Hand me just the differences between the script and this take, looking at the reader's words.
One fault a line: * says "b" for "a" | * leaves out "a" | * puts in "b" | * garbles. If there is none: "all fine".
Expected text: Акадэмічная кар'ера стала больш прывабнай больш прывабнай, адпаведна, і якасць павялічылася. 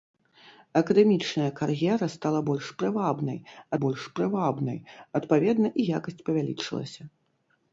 all fine